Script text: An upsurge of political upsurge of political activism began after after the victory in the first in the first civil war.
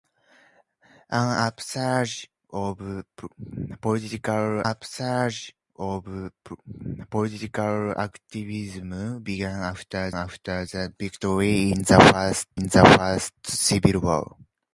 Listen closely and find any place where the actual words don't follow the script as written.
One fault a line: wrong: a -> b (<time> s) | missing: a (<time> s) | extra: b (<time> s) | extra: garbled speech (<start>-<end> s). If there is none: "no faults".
no faults